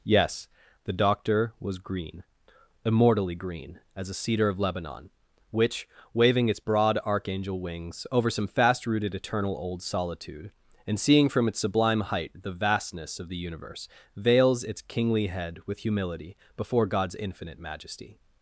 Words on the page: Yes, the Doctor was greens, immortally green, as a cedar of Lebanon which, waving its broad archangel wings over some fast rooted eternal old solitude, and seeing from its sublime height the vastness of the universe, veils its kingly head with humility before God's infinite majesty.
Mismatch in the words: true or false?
true